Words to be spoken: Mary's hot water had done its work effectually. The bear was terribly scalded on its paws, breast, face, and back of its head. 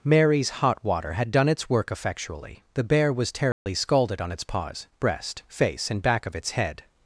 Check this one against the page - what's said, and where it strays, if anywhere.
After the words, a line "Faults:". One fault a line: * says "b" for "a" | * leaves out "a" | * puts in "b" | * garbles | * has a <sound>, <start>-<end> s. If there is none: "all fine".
Mary's hot water had done its work effectually. The bear was terribly scalded on its paws, breast, face, and back of its head.
Faults:
* has a dropout, 3.5-3.7 s